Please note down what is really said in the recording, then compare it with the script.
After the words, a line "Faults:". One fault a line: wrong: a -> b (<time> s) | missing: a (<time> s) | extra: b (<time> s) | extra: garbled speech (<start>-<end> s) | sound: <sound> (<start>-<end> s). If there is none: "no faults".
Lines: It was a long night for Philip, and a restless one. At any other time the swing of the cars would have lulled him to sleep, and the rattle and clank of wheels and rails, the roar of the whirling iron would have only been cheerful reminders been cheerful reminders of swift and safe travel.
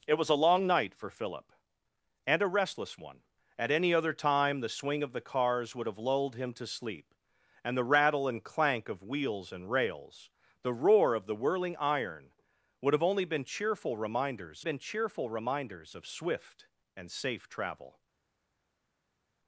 It was a long night for Philip, and a restless one. At any other time the swing of the cars would have lulled him to sleep, and the rattle and clank of wheels and rails, the roar of the whirling iron would have only been cheerful reminders been cheerful reminders of swift and safe travel.
Faults:
no faults